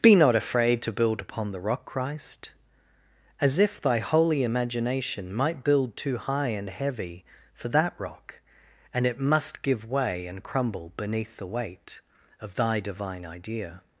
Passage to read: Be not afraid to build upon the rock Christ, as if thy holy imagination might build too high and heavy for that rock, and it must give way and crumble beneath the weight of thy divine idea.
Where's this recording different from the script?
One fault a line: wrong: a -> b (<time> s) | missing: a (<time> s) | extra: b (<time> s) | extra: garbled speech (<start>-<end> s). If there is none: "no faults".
no faults